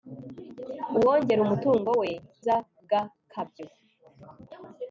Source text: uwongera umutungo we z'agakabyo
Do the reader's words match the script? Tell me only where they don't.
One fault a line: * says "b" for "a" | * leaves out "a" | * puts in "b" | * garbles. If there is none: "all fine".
all fine